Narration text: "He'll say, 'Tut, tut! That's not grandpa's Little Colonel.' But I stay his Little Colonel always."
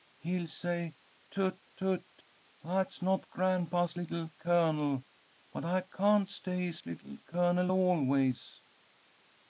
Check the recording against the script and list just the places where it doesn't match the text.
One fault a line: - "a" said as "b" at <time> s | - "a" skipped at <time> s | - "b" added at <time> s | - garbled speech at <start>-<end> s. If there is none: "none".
- "can't" added at 5.8 s